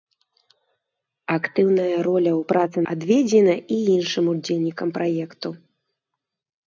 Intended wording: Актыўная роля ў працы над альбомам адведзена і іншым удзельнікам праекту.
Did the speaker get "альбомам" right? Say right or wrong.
wrong